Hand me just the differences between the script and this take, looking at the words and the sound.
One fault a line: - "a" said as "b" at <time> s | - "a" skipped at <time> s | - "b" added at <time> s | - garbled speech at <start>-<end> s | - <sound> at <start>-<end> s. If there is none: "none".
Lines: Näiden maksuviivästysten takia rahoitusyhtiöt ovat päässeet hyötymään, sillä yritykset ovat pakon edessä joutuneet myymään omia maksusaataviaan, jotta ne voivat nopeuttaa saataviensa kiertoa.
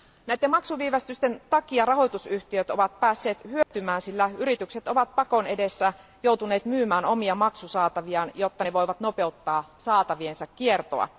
- dropout at 3.6-3.7 s